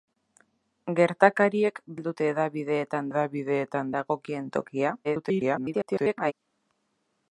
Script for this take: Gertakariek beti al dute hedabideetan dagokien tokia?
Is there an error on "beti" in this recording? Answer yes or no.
yes